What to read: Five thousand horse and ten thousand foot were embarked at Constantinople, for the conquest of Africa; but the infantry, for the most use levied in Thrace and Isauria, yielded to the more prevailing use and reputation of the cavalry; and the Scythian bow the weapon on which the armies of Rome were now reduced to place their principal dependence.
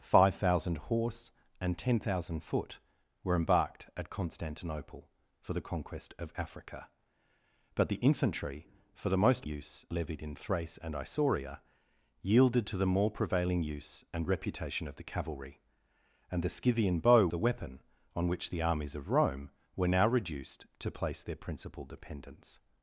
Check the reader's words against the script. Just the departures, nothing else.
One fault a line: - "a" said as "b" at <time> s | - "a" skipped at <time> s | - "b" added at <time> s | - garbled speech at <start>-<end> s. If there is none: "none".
none